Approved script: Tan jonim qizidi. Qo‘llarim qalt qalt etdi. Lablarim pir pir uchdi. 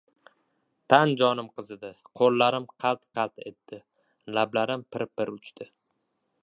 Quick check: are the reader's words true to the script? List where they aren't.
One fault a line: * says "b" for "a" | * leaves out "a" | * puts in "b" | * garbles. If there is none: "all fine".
all fine